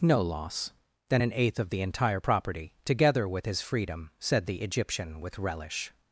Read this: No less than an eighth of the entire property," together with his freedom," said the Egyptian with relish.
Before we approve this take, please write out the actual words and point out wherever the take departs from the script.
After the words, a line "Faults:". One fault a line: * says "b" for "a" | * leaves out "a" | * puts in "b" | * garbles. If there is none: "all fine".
No loss than an eighth of the entire property," together with his freedom," said the Egyptian with relish.
Faults:
* says "loss" for "less"